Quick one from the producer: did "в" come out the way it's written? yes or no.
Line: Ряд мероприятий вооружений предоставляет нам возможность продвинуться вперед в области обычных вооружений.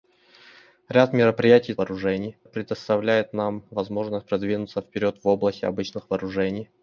yes